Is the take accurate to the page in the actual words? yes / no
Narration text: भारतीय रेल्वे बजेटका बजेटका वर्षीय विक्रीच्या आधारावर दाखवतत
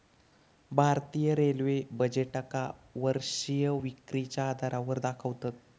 no